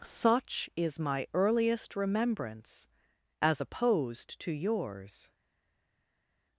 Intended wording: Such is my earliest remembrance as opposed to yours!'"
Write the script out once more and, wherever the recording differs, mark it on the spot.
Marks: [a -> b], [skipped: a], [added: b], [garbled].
Such is my earliest remembrance as opposed to yours!'"